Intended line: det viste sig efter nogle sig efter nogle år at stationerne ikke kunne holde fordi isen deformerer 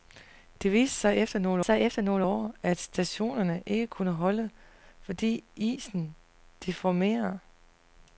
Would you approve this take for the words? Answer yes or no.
yes